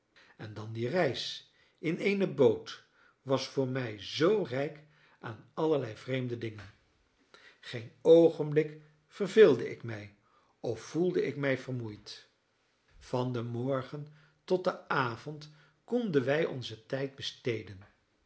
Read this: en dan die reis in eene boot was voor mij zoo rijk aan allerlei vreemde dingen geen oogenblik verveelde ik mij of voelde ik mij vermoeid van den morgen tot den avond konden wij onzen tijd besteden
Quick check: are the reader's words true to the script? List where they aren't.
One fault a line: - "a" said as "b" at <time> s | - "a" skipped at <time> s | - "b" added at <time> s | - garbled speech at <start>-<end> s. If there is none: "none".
none